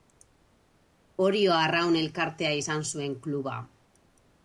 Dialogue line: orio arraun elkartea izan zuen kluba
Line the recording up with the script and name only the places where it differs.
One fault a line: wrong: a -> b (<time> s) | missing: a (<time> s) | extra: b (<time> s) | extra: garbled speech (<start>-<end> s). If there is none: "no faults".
no faults